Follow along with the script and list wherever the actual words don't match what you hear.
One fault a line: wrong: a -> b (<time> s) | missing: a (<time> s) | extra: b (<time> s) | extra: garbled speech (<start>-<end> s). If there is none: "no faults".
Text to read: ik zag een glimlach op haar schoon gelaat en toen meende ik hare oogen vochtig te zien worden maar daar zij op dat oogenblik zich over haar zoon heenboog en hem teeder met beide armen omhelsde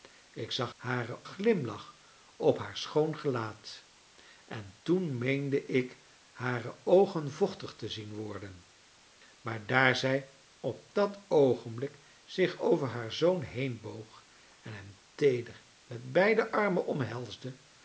wrong: een -> hare (0.7 s)